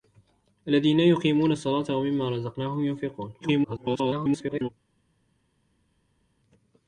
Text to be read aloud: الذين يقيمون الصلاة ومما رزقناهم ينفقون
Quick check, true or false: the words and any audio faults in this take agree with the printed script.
false